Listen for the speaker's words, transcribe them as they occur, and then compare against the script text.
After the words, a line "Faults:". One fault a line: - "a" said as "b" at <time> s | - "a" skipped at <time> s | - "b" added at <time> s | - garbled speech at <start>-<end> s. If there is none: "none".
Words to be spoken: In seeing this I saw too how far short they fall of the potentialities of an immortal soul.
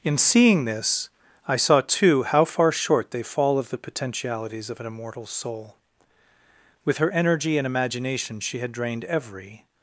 In seeing this I saw too how far short they fall of the potentialities of an immortal soul. With her energy and imagination she had drained every
Faults:
- "With her energy and imagination she had drained every" added at 6.8 s